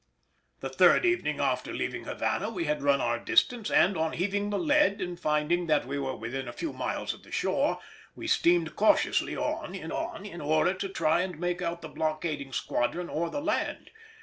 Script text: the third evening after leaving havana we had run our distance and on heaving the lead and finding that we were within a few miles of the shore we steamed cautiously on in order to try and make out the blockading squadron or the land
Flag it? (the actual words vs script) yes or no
yes